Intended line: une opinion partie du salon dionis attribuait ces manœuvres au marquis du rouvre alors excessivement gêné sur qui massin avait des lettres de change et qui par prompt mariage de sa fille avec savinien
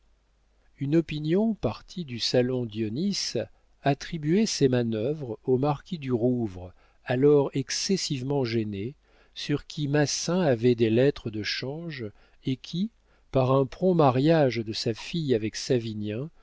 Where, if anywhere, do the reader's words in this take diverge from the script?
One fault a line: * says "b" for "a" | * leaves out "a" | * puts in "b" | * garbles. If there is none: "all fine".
* puts in "un"